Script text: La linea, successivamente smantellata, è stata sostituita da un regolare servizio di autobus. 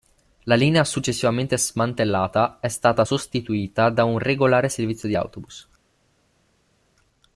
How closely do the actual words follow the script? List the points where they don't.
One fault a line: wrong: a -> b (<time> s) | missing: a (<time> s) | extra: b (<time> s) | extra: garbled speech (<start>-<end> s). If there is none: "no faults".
no faults